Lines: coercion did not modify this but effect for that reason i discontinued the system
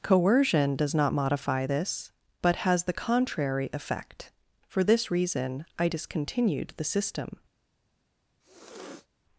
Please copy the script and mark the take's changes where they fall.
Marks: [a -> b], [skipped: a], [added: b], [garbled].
coercion [did -> does] not modify this but [added: has the contrary] effect for [that -> this] reason i discontinued the system